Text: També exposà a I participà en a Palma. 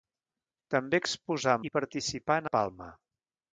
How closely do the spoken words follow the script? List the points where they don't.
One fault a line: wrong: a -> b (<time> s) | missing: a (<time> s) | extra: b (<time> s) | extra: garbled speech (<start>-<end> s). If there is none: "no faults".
no faults